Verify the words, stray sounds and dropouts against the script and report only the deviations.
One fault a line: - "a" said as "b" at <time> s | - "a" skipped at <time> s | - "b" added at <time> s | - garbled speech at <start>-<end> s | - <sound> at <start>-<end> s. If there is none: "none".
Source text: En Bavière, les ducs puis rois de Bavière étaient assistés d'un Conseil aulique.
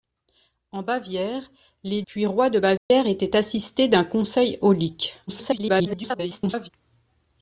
- "ducs" skipped at 2.0 s
- dropout at 2.8-2.9 s
- garbled speech at 5.3-6.7 s